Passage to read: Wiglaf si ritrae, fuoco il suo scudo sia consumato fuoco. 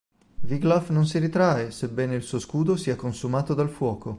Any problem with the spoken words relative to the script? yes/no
yes